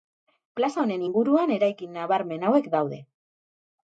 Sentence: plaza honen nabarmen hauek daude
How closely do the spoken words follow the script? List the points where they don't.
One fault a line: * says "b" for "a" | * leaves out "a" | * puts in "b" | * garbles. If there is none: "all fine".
* puts in "inguruan eraikin"